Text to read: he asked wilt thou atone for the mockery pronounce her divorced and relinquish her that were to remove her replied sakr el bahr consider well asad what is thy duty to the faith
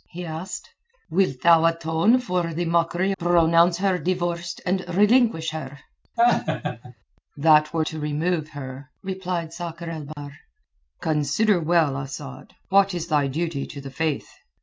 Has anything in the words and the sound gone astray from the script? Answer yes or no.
yes